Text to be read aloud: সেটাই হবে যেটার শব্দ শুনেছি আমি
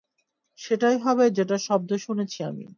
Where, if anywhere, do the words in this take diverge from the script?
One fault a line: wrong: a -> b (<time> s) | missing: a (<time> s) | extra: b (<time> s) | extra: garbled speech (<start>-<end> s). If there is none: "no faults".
no faults